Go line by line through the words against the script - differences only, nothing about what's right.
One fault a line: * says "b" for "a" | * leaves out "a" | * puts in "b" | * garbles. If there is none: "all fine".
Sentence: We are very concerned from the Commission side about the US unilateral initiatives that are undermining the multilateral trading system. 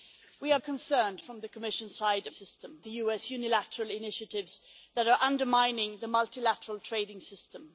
* leaves out "very"
* says "system" for "about"